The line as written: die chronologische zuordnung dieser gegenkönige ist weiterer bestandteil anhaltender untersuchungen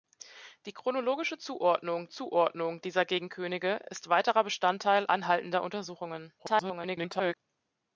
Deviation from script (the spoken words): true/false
true